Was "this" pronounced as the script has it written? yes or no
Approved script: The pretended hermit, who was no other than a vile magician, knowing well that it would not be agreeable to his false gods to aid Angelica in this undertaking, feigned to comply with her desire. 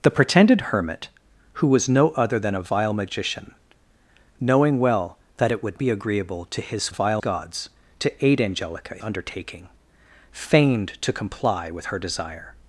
no